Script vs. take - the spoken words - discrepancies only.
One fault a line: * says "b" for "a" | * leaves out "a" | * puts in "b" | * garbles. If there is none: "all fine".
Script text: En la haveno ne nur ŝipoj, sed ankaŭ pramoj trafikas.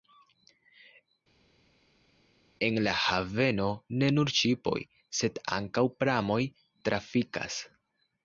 all fine